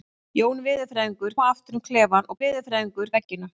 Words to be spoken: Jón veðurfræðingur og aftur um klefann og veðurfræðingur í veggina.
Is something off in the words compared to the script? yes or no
no